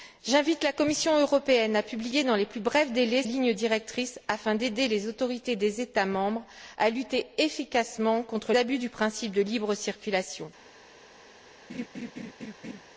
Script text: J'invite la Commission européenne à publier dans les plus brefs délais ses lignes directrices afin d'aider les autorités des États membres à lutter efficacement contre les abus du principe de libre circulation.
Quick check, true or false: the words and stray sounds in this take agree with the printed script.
false